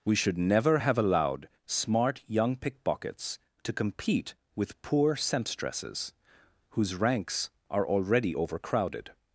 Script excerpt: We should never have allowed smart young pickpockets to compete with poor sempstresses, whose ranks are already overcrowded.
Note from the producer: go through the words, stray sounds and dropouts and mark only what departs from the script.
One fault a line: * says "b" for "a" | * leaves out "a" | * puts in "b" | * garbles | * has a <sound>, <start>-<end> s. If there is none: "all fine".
all fine